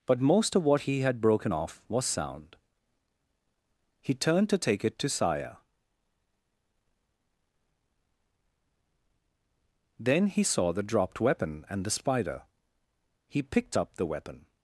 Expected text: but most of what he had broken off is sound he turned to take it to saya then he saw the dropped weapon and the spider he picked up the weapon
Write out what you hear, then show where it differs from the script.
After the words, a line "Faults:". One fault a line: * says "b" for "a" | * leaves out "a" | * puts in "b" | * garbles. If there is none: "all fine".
but most of what he had broken off was sound he turned to take it to saya then he saw the dropped weapon and the spider he picked up the weapon
Faults:
* says "was" for "is"